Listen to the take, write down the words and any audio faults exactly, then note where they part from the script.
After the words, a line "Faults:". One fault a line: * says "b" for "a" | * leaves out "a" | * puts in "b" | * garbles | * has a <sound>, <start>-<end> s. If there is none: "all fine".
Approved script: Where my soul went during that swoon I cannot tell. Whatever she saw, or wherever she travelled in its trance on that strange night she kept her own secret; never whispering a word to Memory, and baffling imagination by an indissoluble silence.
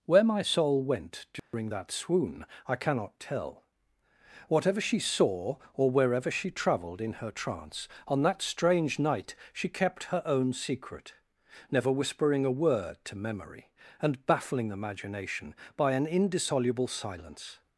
Where my soul went during that swoon I cannot tell. Whatever she saw, or wherever she travelled in her trance on that strange night she kept her own secret; never whispering a word to Memory, and baffling imagination by an indissoluble silence.
Faults:
* has a dropout, 1.4-1.5 s
* says "her" for "its"